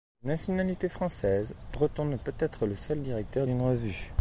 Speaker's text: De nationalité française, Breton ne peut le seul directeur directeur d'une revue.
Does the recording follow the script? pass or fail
fail